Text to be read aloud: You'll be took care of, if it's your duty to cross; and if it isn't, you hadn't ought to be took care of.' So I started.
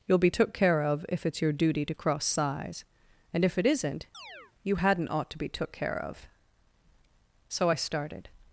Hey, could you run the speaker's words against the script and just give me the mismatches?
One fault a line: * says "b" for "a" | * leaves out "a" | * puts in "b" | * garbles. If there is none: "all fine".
* puts in "size"